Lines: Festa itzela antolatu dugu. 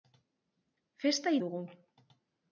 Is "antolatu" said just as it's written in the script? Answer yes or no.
no